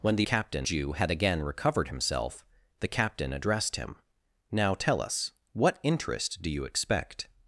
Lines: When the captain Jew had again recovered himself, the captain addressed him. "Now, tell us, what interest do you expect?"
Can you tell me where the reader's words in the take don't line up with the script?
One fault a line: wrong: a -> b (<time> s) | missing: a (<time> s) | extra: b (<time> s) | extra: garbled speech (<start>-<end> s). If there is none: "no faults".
no faults